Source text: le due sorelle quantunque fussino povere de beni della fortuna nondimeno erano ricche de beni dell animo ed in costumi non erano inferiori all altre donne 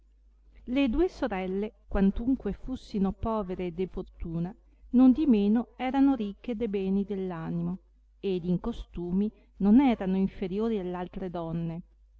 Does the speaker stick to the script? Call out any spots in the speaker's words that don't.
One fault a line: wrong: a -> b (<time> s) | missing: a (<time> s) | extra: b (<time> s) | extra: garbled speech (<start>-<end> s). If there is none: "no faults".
missing: beni della (3.9 s)